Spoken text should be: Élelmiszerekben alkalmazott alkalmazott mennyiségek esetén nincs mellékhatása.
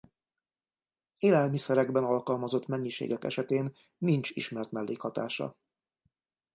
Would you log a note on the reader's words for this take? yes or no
yes